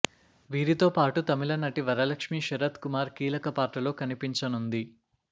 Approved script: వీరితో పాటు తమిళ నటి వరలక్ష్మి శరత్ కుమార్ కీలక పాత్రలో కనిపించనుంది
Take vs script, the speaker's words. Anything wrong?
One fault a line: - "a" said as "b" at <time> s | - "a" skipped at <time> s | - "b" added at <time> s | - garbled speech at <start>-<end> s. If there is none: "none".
none